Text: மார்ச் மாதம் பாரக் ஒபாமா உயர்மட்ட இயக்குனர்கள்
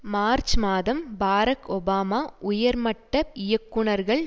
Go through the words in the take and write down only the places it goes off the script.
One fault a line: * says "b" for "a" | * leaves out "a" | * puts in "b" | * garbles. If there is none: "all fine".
all fine